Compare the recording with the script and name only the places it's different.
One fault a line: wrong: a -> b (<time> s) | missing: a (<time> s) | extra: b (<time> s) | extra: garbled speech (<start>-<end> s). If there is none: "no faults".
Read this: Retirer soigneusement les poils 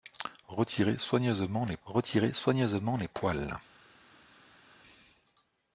extra: retirer soigneusement les (1.8 s)